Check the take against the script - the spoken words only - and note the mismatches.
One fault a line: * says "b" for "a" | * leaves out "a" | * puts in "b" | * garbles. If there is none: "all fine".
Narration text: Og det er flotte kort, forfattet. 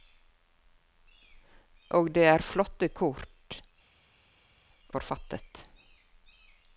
all fine